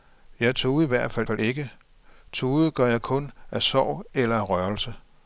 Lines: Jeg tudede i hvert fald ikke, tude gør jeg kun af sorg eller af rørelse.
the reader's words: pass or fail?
fail